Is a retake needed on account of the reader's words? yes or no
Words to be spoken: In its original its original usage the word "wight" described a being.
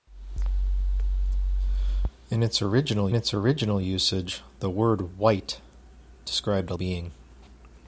no